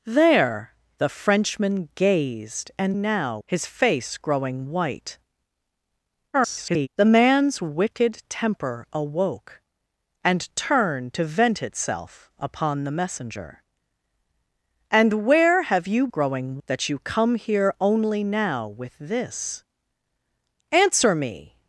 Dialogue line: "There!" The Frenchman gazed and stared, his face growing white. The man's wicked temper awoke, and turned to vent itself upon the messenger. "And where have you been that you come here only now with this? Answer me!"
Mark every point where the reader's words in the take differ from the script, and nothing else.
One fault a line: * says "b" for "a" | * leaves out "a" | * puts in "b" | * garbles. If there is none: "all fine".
* says "now" for "stared"
* garbles
* says "growing" for "been"